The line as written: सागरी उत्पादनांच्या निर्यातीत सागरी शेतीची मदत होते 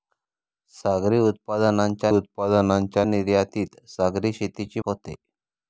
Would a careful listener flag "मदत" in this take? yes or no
yes